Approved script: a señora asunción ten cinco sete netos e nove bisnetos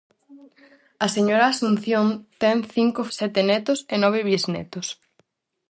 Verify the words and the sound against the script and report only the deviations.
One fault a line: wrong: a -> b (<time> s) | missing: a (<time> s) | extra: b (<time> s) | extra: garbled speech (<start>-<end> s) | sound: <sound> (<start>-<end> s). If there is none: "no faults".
no faults